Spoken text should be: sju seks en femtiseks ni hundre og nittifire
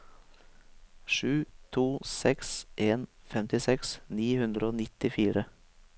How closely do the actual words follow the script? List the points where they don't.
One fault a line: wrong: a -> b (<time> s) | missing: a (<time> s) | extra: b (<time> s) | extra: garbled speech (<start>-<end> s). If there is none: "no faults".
extra: to (1.7 s)